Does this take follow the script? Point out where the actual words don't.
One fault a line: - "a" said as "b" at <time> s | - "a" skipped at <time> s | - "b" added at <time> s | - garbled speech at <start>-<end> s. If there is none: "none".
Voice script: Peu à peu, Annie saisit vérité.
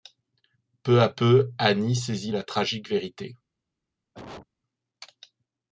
- "la tragique" added at 2.3 s